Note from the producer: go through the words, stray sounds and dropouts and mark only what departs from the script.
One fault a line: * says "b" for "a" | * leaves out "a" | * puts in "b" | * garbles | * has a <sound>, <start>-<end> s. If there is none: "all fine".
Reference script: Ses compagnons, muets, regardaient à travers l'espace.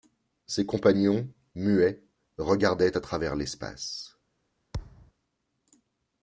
* has a thud, 4.7-5.1 s